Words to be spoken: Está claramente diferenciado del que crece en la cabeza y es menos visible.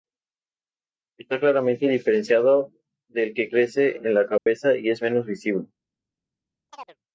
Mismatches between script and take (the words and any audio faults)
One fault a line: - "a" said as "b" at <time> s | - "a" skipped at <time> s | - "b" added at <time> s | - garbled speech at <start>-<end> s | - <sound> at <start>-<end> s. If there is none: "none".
- dropout at 4.4-4.5 s
- chirp at 6.7-7.0 s